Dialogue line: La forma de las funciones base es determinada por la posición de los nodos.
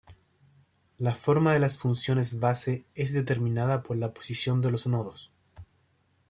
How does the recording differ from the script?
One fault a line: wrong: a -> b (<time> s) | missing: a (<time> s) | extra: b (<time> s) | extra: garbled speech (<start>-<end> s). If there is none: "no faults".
no faults